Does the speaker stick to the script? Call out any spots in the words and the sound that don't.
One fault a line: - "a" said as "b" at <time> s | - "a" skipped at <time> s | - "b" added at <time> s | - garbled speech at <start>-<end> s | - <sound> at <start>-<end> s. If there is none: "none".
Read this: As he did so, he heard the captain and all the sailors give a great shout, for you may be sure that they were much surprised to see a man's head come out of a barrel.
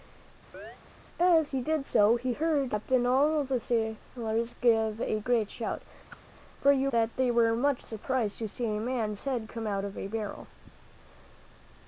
- chirp at 0.5-0.8 s
- whoosh at 6.1-6.2 s
- "may be sure" skipped at 6.9 s